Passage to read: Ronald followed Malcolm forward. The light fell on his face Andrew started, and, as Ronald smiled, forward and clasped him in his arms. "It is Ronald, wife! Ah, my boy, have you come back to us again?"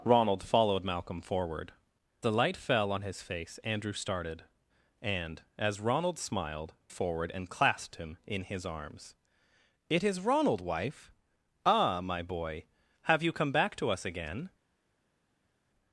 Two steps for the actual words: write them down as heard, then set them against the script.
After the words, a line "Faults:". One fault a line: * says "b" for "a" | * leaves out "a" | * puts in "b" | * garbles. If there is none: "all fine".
Ronald followed Malcolm forward. The light fell on his face Andrew started, and, as Ronald smiled, forward and clasped him in his arms. "It is Ronald, wife! Ah, my boy, have you come back to us again?"
Faults:
all fine